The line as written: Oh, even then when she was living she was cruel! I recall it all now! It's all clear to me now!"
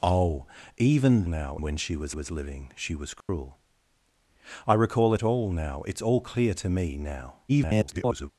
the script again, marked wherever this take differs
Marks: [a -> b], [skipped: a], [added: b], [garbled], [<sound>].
Oh, even [then -> now] when she was [added: was] living she was cruel! [dropout] I recall it all now! It's all clear to me now!" [garbled]